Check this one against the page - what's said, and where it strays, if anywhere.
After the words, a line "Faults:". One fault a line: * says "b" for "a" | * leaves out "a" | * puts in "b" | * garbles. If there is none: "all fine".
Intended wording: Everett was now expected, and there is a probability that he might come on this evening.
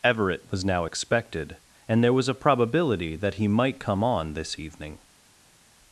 Everett was now expected, and there was a probability that he might come on this evening.
Faults:
* says "was" for "is"